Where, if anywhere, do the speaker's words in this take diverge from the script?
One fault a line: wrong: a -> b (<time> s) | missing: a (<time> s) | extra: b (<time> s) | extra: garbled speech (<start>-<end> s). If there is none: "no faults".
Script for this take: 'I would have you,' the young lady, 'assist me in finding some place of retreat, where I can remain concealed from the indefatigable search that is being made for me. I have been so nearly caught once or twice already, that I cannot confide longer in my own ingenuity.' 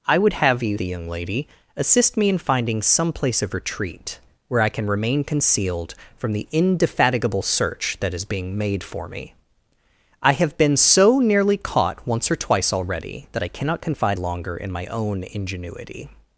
no faults